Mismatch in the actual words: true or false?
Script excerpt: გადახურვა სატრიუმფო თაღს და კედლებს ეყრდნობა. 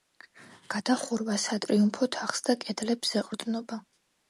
false